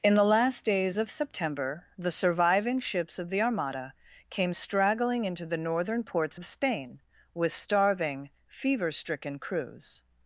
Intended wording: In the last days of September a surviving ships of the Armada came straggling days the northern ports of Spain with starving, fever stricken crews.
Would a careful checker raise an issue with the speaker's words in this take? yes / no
yes